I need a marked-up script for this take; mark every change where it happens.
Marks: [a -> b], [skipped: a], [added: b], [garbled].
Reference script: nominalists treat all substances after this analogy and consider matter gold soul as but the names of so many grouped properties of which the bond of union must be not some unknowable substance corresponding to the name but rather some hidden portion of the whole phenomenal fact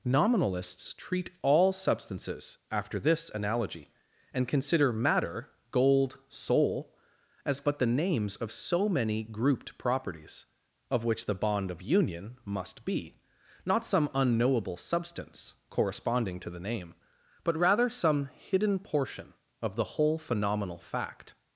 nominalists treat all substances after this analogy and consider matter gold soul as but the names of so many grouped properties of which the bond of union must be not some unknowable substance corresponding to the name but rather some hidden portion of the whole phenomenal fact